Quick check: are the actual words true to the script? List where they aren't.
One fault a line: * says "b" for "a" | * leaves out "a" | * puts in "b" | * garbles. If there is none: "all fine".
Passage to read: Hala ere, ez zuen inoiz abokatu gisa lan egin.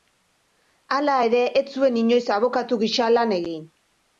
all fine